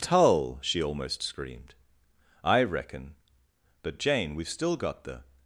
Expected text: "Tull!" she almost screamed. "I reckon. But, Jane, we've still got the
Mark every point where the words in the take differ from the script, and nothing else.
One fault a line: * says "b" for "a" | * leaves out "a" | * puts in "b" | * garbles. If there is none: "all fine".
all fine